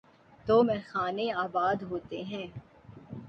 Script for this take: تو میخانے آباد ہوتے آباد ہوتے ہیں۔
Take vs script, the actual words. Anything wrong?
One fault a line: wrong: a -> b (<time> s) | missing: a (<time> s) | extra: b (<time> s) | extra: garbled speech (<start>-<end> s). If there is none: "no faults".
missing: آباد ہوتے (2.2 s)